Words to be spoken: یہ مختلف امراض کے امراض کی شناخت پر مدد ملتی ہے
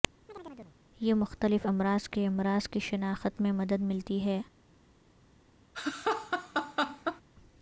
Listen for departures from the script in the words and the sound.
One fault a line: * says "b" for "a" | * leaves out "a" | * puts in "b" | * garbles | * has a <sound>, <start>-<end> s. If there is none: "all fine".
* has a chirp, 0.3-0.8 s
* says "میں" for "پر"
* has a laugh, 5.7-7.2 s